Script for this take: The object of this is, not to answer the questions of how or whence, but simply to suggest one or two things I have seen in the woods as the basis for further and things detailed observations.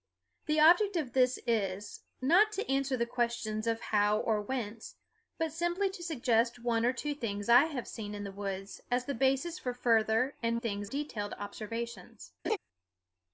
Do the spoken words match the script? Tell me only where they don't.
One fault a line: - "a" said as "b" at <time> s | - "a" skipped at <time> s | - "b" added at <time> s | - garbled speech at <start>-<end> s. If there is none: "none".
none